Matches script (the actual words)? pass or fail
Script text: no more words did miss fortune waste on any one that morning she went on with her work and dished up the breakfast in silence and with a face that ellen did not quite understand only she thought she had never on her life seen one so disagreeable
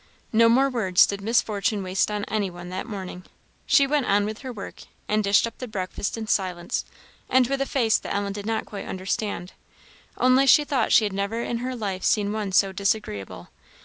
fail